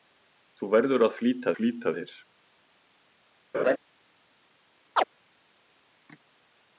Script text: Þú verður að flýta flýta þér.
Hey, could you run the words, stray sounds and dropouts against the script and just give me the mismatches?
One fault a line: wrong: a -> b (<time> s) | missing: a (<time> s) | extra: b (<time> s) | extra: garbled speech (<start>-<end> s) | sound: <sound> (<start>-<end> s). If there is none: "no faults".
sound: laugh (3.5-3.8 s)
sound: chirp (5.0-5.0 s)